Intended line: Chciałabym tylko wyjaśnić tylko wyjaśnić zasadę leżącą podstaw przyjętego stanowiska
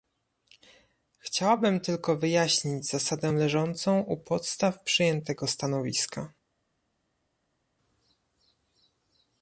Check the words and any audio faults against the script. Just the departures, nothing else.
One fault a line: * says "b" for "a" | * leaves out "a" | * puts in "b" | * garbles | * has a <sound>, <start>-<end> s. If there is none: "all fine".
* leaves out "tylko wyjaśnić"
* puts in "u"